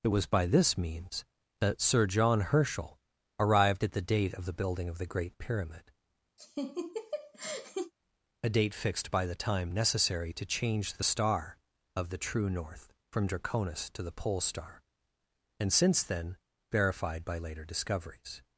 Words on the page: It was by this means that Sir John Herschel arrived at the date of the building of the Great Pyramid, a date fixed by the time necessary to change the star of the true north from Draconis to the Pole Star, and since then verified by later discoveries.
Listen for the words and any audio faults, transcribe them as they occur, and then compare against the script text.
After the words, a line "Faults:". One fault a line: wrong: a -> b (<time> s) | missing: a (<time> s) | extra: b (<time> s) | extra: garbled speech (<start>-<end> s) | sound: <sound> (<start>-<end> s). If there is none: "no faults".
It was by this means that Sir John Herschel arrived at the date of the building of the Great Pyramid, a date fixed by the time necessary to change the star of the true north from Draconis to the Pole Star, and since then verified by later discoveries.
Faults:
sound: laugh (6.4-7.9 s)